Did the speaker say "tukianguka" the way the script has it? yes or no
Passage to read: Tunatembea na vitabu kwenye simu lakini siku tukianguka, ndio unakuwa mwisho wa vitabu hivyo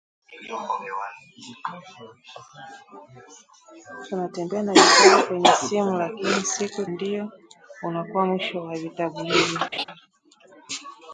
no